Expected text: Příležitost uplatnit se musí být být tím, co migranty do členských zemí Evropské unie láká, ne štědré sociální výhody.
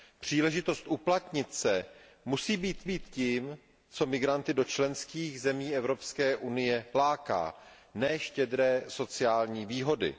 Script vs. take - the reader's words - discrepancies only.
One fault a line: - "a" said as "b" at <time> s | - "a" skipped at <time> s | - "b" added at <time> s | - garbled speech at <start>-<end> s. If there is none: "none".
none